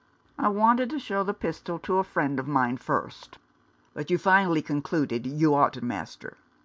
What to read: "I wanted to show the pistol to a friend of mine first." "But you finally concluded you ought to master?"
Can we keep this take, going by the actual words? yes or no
yes